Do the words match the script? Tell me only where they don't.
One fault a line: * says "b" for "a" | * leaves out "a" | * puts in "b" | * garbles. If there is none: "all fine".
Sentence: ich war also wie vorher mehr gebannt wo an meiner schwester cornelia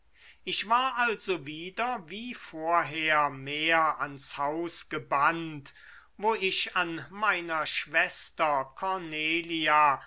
* puts in "wieder"
* puts in "ans haus"
* puts in "ich"